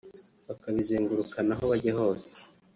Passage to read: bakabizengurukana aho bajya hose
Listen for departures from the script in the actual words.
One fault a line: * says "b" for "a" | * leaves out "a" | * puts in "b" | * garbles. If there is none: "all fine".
all fine